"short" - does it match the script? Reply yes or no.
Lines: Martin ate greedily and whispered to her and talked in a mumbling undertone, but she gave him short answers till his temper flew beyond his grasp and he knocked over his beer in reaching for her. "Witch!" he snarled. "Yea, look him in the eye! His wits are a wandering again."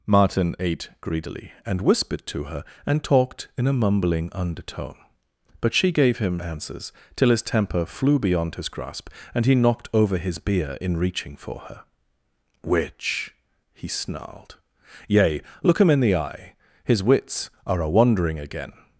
no